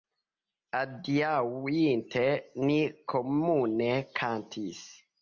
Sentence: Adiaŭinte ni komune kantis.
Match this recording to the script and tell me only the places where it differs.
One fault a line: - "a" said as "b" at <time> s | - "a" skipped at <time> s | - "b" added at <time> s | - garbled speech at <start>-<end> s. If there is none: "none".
none